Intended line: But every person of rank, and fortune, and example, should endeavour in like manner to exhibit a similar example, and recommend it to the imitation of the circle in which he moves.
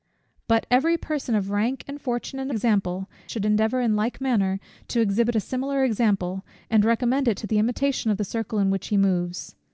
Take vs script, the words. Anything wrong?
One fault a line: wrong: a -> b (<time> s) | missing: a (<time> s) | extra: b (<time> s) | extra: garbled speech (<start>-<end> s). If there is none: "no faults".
no faults